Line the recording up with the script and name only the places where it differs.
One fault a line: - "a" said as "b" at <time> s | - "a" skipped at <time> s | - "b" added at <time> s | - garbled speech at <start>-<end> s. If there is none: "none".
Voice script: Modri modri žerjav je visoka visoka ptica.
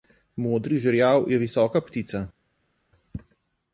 - "modri" skipped at 0.8 s
- "visoka" skipped at 1.8 s